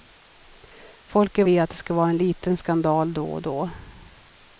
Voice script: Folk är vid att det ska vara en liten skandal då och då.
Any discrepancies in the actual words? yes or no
no